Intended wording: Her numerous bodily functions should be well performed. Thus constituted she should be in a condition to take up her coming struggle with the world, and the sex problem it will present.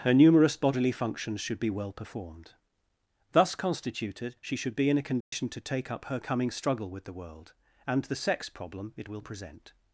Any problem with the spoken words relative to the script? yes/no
no